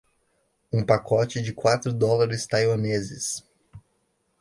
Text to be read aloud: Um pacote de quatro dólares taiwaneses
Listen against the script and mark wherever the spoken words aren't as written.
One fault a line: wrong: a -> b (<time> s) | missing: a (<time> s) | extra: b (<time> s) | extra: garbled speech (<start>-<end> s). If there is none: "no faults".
no faults